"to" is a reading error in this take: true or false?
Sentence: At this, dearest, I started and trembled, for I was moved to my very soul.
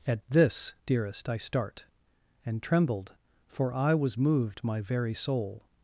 true